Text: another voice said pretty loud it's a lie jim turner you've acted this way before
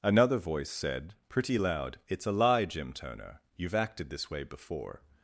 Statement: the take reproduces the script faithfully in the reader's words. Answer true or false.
true